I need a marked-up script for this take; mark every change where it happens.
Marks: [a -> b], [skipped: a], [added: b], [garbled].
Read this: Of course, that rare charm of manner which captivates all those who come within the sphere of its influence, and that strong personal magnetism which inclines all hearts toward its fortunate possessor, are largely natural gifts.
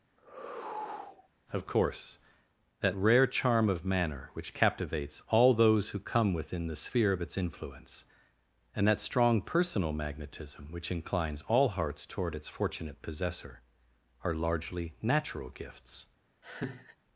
Of course, that rare charm of manner which captivates all those who come within the sphere of its influence, and that strong personal magnetism which inclines all hearts toward its fortunate possessor, are largely natural gifts.